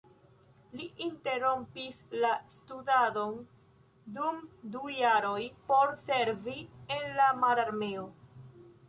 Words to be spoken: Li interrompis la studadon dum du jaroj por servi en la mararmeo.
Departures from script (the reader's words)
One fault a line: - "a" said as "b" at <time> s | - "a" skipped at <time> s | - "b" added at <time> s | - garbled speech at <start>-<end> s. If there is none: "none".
none